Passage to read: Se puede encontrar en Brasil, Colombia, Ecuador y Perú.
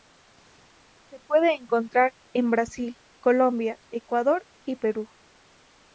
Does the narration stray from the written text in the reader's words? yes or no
no